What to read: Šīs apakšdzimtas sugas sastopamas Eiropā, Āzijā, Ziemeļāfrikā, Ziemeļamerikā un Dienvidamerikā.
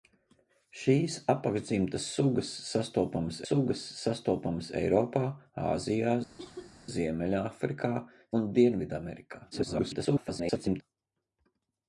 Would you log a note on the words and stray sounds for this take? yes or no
yes